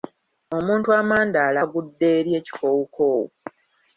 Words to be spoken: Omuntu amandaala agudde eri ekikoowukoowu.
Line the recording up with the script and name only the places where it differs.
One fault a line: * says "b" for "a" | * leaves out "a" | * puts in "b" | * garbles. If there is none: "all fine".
all fine